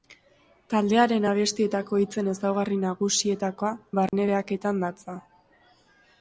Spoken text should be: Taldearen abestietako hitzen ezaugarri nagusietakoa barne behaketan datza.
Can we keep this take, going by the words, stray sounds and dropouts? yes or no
no